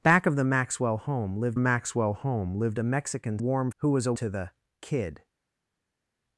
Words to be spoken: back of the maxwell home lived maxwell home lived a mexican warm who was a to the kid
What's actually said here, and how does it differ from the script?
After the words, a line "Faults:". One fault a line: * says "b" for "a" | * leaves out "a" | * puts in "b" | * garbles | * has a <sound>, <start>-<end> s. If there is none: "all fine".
back of the maxwell home lived maxwell home lived a mexican warm who was a to the kid
Faults:
all fine